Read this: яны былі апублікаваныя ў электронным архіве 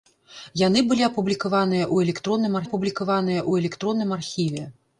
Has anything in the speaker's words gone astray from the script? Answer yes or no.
yes